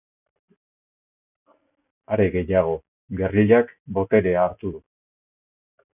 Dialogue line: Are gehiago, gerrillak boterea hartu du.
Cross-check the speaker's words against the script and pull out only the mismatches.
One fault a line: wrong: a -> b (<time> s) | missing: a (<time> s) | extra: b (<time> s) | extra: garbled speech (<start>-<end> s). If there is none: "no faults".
no faults